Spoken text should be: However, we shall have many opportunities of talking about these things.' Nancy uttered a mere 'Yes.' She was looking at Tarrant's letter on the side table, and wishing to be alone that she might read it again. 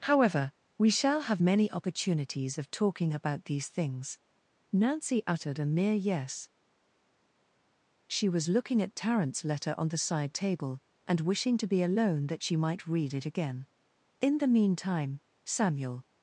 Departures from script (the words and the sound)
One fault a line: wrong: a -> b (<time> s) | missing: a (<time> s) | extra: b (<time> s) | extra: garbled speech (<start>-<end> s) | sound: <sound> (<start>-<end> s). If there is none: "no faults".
extra: In the meantime Samuel (14.2 s)